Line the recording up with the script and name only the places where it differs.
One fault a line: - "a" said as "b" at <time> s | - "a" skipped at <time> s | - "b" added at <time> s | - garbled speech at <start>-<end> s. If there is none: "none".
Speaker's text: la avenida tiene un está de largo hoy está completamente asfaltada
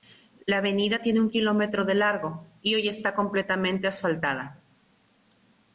- "está" said as "kilómetro" at 1.3 s
- "y" added at 2.6 s